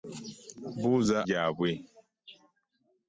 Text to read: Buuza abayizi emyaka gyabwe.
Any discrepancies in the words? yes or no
yes